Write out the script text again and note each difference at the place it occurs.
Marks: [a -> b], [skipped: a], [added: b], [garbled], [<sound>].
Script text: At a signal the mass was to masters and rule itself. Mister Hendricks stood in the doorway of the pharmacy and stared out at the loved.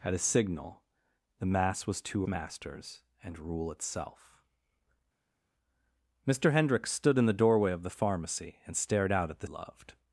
At a signal the mass was to masters and rule itself. Mister Hendricks stood in the doorway of the pharmacy and stared out at the loved.